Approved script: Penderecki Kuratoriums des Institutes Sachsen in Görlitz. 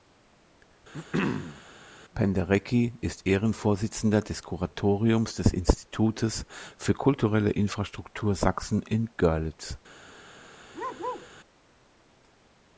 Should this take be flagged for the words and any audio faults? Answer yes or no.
yes